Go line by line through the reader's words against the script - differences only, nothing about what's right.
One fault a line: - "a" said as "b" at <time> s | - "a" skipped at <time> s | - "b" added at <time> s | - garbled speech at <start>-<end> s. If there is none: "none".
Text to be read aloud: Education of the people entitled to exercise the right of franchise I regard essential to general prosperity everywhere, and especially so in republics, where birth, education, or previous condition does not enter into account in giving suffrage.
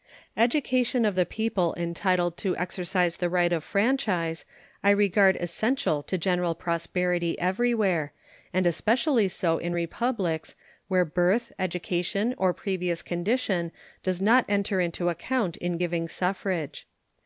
none